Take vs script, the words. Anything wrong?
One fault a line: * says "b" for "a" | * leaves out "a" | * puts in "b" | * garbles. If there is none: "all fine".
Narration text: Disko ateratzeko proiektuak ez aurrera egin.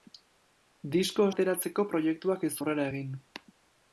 all fine